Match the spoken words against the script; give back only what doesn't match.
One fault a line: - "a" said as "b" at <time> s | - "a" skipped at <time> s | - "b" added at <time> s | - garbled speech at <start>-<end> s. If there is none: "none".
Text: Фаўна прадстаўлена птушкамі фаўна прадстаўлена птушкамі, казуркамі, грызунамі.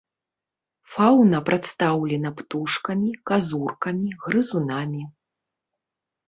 - "фаўна прадстаўлена птушкамі" skipped at 3.1 s